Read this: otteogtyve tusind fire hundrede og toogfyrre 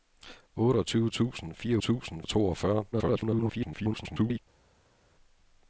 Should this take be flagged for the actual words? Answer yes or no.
yes